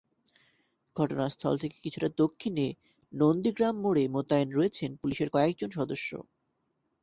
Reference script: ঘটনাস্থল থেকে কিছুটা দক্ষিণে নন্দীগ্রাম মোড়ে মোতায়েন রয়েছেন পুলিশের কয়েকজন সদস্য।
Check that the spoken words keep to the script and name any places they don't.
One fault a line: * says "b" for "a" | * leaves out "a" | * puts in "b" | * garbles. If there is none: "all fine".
all fine